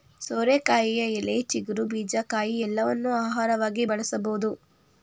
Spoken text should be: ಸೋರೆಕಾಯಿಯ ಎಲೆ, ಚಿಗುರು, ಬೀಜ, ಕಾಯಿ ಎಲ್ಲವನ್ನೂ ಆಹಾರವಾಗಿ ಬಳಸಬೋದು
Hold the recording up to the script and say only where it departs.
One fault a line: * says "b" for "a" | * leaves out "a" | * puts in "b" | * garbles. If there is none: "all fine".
all fine